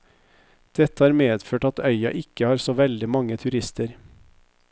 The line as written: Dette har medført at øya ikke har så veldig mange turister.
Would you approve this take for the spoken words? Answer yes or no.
yes